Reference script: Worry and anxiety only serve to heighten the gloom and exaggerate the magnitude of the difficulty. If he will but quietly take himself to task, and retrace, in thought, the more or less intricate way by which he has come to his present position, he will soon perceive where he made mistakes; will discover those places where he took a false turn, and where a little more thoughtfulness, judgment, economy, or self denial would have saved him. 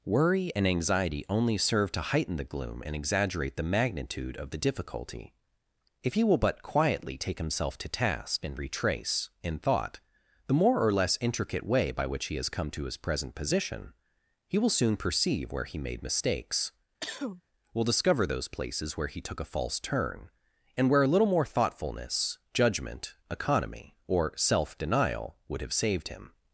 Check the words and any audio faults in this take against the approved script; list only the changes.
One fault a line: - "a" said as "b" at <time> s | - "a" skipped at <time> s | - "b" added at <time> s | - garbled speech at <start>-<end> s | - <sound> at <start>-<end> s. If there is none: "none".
- cough at 17.0-17.4 s